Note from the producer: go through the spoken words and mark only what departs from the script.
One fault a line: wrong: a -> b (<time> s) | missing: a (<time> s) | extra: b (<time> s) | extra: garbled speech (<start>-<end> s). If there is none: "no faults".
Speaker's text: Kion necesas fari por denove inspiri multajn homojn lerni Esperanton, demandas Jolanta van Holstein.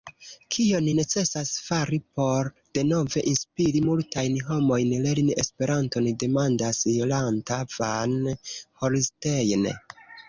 no faults